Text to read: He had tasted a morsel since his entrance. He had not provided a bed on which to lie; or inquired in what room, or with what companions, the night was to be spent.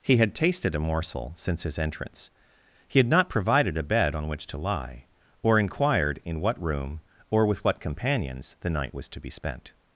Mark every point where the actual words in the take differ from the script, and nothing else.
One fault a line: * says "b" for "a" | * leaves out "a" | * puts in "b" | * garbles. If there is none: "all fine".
all fine